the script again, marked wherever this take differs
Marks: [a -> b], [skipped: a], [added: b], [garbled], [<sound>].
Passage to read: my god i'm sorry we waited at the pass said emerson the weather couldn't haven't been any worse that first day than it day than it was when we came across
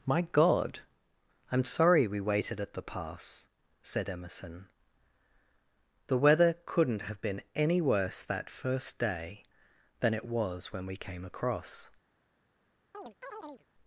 my god i'm sorry we waited at the pass said emerson the weather couldn't [haven't -> have] been any worse that first day than it [skipped: day than it] was when we came across [chirp]